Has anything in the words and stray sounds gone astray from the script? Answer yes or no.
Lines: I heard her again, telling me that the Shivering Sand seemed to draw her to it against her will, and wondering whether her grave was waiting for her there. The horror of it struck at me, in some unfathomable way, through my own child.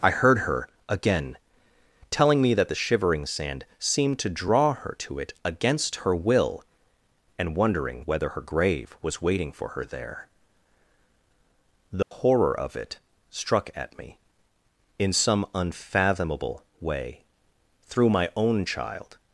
yes